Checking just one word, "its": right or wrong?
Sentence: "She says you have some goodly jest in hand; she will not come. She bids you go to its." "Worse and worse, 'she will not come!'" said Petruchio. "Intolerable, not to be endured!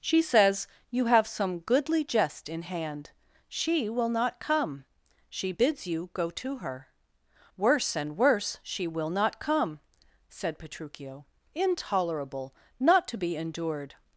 wrong